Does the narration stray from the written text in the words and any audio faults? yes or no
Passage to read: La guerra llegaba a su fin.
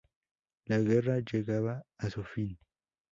no